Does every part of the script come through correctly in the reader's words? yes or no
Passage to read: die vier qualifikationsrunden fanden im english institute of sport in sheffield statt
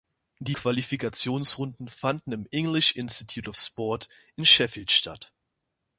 no